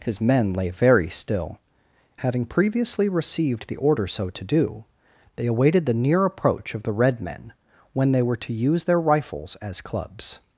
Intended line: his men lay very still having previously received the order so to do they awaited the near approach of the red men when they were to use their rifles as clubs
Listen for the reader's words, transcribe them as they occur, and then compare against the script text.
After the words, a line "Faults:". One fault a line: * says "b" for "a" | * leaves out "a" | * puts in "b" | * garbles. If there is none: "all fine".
his men lay very still having previously received the order so to do they awaited the near approach of the red men when they were to use their rifles as clubs
Faults:
all fine